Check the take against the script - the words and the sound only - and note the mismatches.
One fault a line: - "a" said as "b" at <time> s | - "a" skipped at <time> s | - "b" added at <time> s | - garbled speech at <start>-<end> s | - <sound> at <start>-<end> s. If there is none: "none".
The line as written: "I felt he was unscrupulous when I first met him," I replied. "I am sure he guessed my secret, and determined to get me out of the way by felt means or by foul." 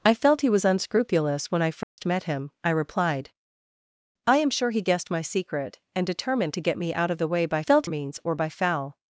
- dropout at 1.8-2.0 s